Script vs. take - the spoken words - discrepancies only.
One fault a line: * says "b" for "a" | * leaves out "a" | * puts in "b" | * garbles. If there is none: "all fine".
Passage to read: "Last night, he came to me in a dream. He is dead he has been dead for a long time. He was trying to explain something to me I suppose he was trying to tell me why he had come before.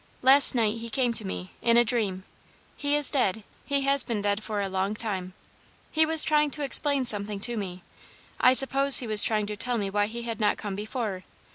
* puts in "not"